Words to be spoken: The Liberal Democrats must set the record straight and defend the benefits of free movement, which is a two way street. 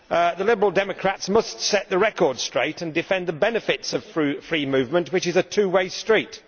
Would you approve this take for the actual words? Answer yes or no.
yes